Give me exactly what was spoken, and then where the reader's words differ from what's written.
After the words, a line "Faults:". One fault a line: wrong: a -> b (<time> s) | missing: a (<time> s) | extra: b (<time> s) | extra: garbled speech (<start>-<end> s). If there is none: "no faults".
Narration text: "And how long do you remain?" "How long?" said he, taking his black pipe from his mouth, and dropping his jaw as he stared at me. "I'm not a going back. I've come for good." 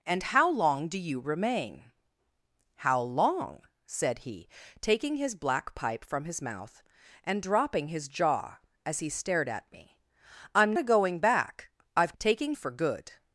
"And how long do you remain?" "How long?" said he, taking his black pipe from his mouth, and dropping his jaw as he stared at me. "I'm a going back. I've taking for good."
Faults:
missing: not (10.7 s)
wrong: come -> taking (12.2 s)